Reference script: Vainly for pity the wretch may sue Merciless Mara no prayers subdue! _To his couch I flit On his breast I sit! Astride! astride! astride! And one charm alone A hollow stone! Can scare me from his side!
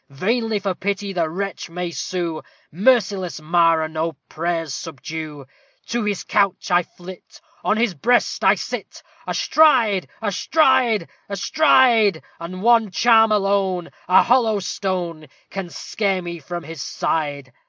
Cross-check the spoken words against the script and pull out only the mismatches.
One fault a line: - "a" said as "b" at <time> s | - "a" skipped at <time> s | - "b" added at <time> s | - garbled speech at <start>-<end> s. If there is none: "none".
none